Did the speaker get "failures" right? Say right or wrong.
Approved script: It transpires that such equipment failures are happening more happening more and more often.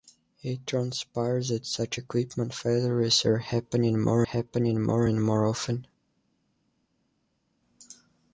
right